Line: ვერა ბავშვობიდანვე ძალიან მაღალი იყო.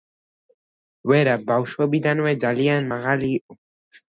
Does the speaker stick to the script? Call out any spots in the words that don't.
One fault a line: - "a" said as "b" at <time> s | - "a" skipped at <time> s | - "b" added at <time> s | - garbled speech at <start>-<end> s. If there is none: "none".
none